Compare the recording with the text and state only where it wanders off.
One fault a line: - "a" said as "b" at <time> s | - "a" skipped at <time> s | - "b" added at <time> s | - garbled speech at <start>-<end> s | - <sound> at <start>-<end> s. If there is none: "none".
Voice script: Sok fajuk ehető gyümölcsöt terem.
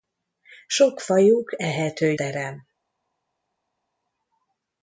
- "gyümölcsöt" skipped at 2.2 s